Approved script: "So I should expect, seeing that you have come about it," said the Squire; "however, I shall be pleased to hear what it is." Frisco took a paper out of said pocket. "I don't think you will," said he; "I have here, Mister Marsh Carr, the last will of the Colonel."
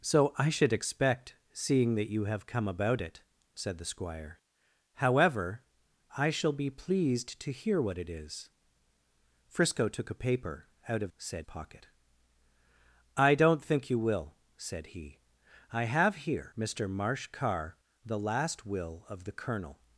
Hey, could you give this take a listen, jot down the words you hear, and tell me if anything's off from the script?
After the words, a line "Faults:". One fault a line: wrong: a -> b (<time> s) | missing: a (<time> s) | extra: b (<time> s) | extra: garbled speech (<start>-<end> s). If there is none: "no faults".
"So I should expect, seeing that you have come about it," said the Squire; "however, I shall be pleased to hear what it is." Frisco took a paper out of said pocket. "I don't think you will," said he; "I have here, Mister Marsh Carr, the last will of the Colonel."
Faults:
no faults